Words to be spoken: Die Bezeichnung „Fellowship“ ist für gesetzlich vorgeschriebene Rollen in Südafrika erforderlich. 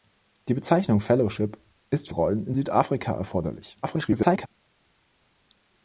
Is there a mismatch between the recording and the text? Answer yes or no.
yes